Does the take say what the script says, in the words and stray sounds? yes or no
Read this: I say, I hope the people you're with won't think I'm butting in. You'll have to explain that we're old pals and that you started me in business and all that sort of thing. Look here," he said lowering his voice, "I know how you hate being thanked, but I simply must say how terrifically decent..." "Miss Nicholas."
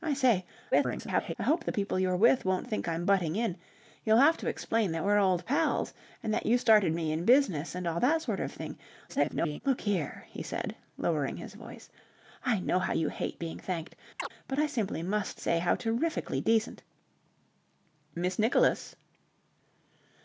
no